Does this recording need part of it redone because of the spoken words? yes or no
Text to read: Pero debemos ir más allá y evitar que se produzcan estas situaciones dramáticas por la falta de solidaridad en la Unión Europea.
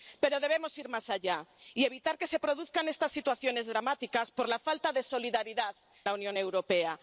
yes